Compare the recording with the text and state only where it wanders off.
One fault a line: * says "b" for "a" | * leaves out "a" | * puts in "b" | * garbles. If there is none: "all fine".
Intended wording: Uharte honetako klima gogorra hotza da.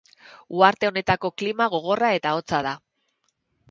* puts in "eta"